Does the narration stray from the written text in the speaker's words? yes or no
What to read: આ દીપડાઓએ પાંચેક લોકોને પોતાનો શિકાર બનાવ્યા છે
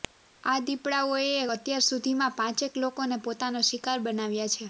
yes